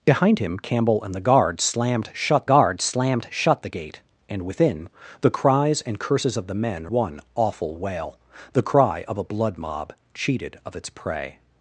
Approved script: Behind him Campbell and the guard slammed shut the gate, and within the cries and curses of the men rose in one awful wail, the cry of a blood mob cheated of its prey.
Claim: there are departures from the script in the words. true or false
true